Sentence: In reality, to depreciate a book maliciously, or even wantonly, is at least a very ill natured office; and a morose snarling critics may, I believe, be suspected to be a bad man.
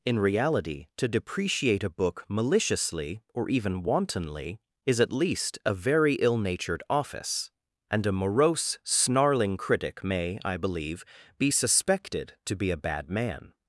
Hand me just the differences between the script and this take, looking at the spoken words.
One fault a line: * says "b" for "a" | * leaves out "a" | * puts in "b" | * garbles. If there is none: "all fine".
* says "critic" for "critics"